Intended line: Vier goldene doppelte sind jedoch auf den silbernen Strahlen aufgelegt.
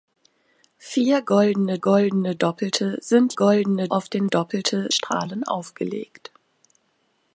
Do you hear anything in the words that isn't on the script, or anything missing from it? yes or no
yes